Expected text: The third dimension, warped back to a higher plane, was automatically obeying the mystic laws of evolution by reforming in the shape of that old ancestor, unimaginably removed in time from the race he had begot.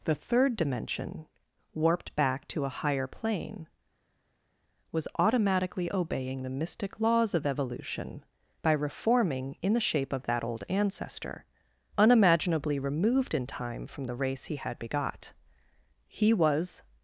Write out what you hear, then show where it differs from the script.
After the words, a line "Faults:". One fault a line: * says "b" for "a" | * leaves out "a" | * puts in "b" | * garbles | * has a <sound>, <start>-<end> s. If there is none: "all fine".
The third dimension, warped back to a higher plane, was automatically obeying the mystic laws of evolution by reforming in the shape of that old ancestor, unimaginably removed in time from the race he had begot. He was
Faults:
* puts in "He was"